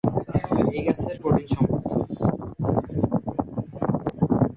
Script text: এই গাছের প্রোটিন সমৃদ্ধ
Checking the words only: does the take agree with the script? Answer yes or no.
yes